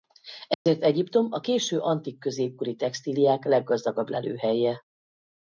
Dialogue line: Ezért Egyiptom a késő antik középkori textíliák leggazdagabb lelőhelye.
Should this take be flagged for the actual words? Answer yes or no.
no